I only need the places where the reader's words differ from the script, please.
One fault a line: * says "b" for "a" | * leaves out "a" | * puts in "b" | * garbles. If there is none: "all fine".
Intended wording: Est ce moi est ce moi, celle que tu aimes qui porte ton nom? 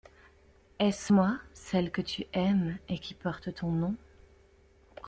* leaves out "est ce moi"
* puts in "et"